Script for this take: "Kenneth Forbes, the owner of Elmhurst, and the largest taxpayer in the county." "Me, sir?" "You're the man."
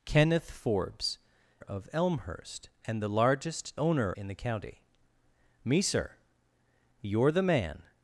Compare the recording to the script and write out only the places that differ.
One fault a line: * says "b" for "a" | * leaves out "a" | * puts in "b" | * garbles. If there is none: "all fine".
* leaves out "the owner"
* says "owner" for "taxpayer"